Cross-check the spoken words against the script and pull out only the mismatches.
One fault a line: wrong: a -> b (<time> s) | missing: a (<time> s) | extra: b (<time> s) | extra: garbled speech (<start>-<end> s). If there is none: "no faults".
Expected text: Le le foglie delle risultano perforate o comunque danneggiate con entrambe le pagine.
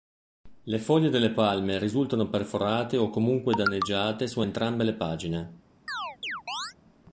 missing: le (0.8 s)
extra: palme (1.3 s)
wrong: con -> su (4.2 s)